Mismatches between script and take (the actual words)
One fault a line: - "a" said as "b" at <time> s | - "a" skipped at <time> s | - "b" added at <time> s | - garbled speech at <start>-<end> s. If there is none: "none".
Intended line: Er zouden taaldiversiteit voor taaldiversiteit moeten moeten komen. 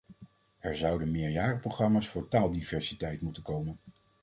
- "taaldiversiteit" said as "meerjarenprogramma's" at 1.1 s
- "moeten" skipped at 3.4 s